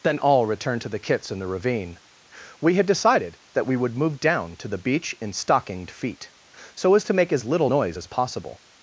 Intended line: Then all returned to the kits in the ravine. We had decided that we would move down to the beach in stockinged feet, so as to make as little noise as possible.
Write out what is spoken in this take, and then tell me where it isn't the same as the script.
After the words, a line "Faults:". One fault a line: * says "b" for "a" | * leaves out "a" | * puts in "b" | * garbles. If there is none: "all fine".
Then all returned to the kits in the ravine. We had decided that we would move down to the beach in stockinged feet, so as to make as little noise as possible.
Faults:
all fine